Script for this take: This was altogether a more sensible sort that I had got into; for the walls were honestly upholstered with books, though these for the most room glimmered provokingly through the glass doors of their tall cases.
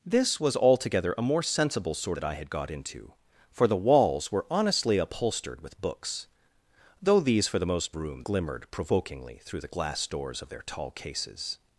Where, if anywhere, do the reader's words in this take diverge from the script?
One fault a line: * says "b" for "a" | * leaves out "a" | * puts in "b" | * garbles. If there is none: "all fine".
all fine